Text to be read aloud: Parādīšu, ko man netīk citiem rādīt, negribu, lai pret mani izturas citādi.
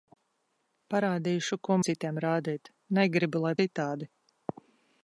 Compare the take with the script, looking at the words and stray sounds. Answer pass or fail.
fail